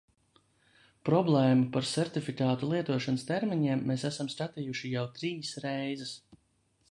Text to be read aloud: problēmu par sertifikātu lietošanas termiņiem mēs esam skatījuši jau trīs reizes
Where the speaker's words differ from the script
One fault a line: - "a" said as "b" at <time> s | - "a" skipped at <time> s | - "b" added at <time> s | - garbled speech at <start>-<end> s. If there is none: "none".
none